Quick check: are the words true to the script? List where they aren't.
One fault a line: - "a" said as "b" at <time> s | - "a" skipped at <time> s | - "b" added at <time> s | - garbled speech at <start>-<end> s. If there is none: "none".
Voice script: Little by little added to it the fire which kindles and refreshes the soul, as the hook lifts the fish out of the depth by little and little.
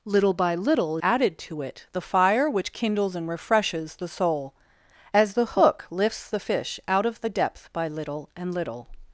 none